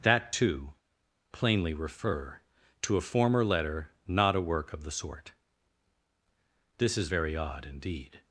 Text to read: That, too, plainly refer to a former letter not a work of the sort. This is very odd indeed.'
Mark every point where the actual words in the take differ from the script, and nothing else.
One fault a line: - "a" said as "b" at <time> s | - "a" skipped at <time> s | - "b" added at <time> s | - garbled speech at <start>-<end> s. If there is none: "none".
none